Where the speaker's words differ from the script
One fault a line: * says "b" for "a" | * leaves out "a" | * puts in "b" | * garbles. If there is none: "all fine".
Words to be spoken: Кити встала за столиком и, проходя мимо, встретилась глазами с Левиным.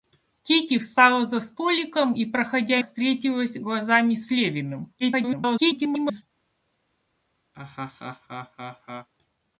* leaves out "мимо"
* garbles